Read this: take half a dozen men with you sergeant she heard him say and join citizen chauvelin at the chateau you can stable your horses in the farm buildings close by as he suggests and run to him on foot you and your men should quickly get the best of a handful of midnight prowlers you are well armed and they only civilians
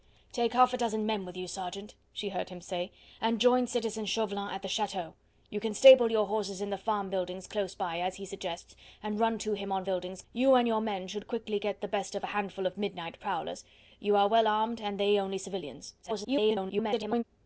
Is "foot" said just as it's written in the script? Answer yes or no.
no